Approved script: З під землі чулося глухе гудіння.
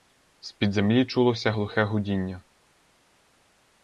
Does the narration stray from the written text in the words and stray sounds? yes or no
no